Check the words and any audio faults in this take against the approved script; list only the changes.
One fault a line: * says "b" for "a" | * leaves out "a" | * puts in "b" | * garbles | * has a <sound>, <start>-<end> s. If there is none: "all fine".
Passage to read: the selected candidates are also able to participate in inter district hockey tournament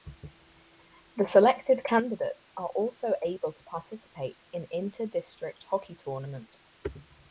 all fine